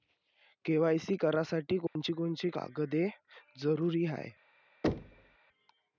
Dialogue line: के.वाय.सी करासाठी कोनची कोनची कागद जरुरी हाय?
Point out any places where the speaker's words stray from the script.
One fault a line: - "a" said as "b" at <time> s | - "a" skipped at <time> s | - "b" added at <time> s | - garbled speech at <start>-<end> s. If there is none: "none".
none